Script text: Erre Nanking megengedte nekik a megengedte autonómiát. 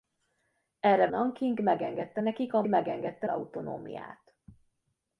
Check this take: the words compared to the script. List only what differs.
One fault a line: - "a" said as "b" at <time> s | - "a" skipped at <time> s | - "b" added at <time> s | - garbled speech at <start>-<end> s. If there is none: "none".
none